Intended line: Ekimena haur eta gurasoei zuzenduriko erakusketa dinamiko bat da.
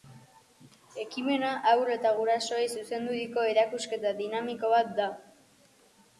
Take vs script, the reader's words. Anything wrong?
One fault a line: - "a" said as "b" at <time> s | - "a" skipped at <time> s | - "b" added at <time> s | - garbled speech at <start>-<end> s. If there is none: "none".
none